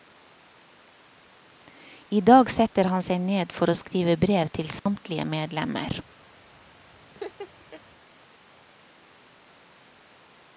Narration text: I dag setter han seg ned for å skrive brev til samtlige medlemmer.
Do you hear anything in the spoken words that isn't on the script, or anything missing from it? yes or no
no